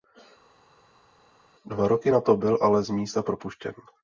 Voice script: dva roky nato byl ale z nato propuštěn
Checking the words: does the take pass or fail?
fail